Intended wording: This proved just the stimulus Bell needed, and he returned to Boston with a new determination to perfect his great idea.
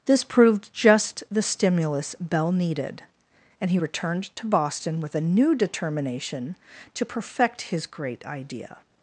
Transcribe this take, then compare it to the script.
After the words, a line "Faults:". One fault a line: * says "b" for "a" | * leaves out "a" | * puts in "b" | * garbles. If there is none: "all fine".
This proved just the stimulus Bell needed, and he returned to Boston with a new determination to perfect his great idea.
Faults:
all fine